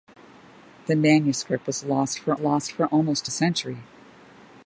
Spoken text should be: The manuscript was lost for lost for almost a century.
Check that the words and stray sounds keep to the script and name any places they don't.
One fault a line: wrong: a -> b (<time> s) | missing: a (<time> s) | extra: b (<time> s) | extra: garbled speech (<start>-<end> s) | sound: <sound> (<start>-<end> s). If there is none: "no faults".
no faults